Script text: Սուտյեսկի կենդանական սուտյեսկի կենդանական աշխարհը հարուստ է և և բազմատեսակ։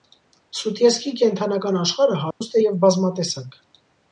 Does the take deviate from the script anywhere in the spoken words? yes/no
yes